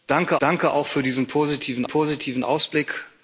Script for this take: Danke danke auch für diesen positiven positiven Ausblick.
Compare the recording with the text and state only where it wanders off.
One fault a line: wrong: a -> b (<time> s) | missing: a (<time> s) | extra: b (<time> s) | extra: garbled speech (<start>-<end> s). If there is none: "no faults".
no faults